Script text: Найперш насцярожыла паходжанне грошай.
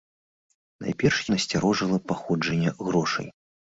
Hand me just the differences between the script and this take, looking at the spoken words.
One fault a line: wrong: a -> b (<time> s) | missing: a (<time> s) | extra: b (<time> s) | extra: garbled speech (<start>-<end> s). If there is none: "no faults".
no faults